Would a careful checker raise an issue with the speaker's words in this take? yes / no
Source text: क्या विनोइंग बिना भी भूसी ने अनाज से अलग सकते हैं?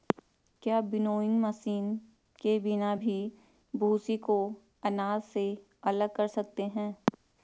yes